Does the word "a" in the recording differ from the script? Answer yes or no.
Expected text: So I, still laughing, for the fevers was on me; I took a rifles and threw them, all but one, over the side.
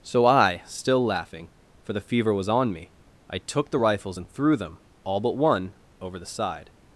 yes